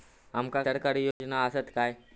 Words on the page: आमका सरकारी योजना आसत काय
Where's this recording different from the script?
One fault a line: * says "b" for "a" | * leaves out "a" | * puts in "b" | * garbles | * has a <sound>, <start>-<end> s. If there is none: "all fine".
* has a dropout, 1.1-1.2 s